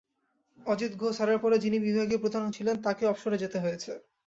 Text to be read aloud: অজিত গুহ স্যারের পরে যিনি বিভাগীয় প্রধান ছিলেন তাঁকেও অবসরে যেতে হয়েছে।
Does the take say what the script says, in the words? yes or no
yes